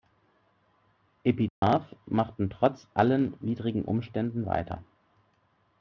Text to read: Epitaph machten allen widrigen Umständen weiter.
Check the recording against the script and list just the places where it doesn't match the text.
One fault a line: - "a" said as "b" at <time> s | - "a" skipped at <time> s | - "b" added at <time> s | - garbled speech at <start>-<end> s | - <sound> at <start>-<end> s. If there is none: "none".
- dropout at 1.5-1.6 s
- "trotz" added at 2.5 s